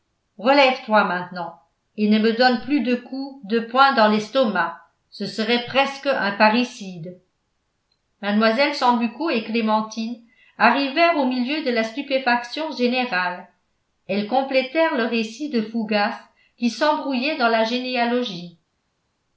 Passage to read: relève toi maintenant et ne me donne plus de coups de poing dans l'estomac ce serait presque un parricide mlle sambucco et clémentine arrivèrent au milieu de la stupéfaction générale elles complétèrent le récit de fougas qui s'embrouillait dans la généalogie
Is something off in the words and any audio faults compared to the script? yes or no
no